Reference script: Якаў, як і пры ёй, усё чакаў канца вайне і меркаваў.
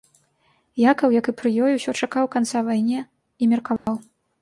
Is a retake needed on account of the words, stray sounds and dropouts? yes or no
yes